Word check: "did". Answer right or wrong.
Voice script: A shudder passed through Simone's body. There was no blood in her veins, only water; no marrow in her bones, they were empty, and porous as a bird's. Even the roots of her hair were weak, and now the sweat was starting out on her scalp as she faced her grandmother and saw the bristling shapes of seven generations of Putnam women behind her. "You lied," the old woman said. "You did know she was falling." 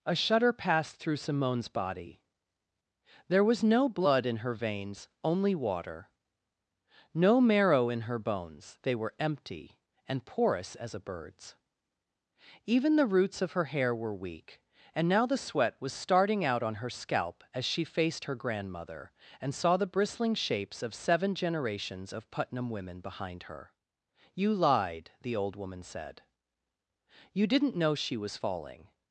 wrong